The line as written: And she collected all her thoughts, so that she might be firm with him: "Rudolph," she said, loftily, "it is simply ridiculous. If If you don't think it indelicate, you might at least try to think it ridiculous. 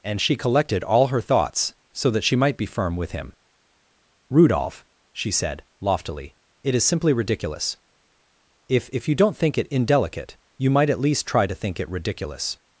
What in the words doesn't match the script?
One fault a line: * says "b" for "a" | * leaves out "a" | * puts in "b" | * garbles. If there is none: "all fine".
all fine